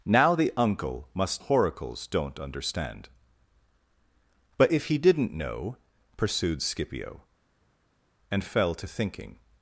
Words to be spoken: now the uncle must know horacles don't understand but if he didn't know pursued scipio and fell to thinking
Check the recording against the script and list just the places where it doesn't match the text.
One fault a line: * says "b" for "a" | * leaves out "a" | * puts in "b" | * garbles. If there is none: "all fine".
* leaves out "know"